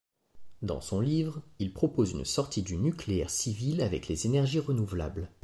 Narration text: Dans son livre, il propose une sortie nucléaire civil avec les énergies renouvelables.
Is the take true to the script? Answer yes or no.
no